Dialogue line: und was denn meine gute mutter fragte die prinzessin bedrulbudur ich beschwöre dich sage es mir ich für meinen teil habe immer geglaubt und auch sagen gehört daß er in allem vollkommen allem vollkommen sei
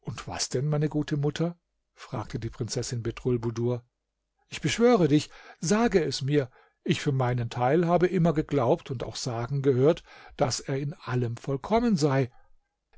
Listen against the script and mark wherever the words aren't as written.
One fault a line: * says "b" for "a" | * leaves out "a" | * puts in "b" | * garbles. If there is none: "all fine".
* leaves out "allem vollkommen"